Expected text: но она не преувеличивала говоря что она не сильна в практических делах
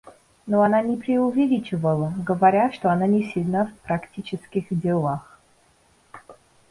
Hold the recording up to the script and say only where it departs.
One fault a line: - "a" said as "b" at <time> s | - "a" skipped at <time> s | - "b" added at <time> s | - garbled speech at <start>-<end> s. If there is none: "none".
none